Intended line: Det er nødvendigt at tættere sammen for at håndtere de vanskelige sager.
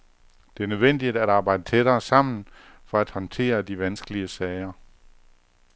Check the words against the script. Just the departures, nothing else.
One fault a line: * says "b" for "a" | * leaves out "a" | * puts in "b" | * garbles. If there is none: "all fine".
* puts in "arbejde"